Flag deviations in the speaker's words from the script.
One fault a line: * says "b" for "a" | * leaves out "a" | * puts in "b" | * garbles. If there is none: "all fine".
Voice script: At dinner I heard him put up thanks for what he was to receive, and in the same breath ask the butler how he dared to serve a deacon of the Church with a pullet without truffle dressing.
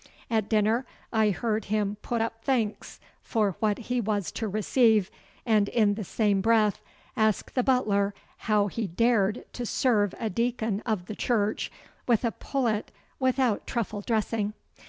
all fine